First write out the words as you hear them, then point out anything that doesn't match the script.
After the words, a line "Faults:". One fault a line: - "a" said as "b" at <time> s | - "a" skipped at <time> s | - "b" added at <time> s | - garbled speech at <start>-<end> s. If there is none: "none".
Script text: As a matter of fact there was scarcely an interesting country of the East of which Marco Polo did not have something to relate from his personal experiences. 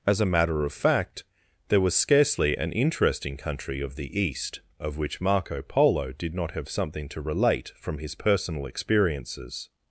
As a matter of fact there was scarcely an interesting country of the East of which Marco Polo did not have something to relate from his personal experiences.
Faults:
none